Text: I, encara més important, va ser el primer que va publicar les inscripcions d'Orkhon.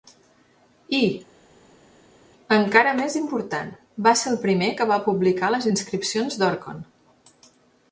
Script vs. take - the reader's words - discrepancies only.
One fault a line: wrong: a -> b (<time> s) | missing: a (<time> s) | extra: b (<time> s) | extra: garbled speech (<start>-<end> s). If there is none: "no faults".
no faults